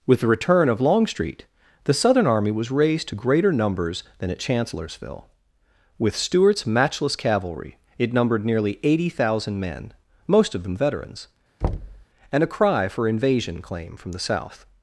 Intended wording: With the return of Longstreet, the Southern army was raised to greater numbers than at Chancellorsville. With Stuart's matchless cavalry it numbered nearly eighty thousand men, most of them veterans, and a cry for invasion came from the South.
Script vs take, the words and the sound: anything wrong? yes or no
yes